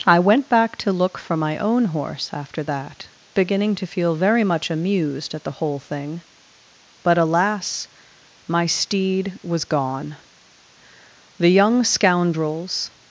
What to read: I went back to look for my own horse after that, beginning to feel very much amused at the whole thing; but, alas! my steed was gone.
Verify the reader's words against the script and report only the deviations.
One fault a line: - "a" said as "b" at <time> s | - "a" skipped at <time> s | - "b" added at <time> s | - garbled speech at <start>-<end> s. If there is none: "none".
- "The young scoundrels" added at 11.4 s